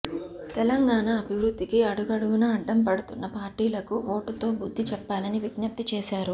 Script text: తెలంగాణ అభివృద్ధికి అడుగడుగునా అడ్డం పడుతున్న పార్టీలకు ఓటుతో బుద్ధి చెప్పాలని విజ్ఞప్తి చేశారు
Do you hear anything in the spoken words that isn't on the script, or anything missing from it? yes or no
no